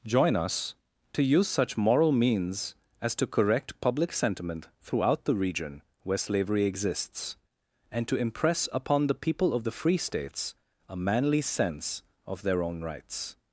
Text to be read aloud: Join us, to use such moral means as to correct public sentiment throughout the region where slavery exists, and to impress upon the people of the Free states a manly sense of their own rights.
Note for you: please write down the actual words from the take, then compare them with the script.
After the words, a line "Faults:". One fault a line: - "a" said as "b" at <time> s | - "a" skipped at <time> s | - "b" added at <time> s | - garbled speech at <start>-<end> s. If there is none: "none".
Join us, to use such moral means as to correct public sentiment throughout the region where slavery exists, and to impress upon the people of the Free states a manly sense of their own rights.
Faults:
none